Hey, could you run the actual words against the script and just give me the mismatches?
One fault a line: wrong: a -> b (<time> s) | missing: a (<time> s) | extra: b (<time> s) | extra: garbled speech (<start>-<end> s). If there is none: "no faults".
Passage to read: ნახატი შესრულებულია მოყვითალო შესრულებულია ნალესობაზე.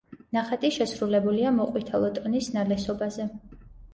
wrong: შესრულებულია -> ტონის (2.2 s)